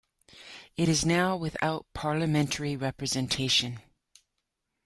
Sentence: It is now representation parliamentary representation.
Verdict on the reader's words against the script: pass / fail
fail